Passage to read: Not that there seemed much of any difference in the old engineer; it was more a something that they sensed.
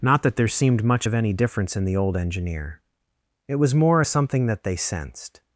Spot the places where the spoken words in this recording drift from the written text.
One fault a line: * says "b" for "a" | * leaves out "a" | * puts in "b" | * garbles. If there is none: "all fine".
all fine